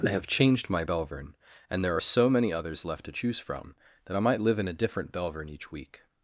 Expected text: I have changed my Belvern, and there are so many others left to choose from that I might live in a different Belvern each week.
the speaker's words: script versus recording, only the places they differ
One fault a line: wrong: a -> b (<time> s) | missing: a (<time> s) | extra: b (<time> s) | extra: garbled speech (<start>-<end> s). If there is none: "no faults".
no faults